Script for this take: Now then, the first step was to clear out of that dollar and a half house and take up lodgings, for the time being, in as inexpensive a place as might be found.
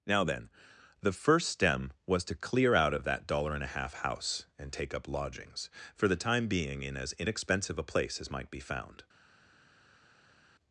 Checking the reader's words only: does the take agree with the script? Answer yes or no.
no